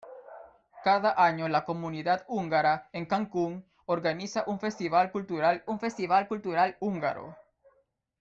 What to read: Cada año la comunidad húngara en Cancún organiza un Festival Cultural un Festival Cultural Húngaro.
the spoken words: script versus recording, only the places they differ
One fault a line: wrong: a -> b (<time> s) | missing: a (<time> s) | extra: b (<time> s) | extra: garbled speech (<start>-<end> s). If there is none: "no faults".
no faults